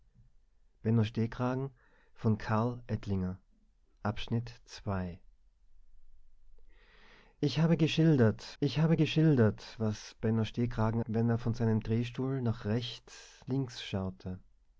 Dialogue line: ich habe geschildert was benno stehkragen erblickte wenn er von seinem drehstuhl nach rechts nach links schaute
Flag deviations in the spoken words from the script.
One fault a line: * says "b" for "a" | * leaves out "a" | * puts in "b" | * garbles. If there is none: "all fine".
* puts in "ich habe geschildert"
* leaves out "erblickte"
* leaves out "nach"